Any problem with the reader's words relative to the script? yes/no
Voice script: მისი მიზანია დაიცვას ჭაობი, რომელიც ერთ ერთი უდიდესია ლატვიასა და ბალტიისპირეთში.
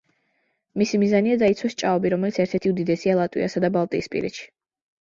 no